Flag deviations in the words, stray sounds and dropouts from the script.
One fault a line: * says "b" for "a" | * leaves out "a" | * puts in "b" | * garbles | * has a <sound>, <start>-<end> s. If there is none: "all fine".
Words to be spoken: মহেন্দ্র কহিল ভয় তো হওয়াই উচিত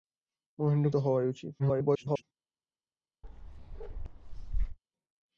* leaves out "কহিল ভয়"
* garbles
* has a bark, 3.2-4.8 s